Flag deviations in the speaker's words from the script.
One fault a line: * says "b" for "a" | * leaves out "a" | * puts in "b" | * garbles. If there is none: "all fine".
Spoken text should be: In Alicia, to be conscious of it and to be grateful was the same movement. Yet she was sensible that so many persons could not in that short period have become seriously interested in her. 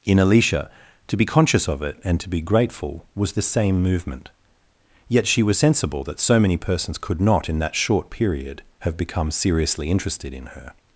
all fine